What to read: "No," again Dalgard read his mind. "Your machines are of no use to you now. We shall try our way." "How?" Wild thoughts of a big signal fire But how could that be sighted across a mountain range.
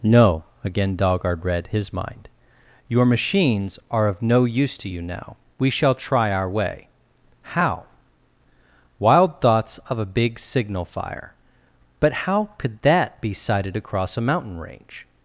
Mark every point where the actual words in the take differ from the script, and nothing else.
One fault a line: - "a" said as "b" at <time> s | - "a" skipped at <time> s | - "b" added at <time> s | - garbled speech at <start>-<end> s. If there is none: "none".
none